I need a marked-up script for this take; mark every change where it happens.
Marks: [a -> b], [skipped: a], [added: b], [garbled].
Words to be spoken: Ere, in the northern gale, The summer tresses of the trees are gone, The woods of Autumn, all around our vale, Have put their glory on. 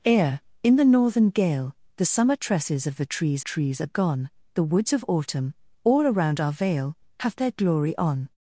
Ere, in the northern gale, The summer tresses of the trees [added: trees] are gone, The woods of Autumn, all around our vale, Have [skipped: put] their glory on.